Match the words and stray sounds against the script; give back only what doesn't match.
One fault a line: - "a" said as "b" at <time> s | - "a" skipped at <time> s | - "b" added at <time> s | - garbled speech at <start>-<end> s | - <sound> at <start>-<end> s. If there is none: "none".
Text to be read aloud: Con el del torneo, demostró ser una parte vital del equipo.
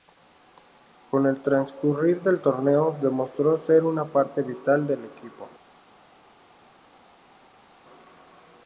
- "transcurrir" added at 1.4 s